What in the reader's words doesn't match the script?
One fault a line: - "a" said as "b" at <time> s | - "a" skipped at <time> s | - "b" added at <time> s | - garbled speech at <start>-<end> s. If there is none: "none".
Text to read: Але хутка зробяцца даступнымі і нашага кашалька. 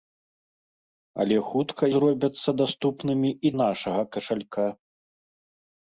none